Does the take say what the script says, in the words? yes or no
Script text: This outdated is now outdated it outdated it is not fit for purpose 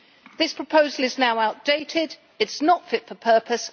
no